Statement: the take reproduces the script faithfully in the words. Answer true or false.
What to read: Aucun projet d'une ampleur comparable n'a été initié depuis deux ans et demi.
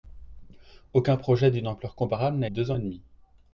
false